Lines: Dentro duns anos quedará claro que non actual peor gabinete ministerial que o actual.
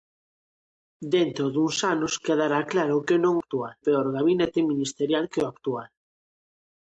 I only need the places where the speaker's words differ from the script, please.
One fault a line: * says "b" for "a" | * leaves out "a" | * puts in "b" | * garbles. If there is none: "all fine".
all fine